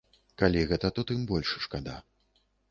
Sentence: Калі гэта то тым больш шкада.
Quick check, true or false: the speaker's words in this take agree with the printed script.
true